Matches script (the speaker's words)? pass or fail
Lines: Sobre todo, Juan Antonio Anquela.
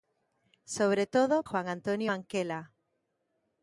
pass